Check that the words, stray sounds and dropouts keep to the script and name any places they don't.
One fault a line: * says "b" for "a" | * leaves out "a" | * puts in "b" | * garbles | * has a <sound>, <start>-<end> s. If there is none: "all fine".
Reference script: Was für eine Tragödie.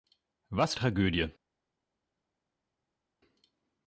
* leaves out "für eine"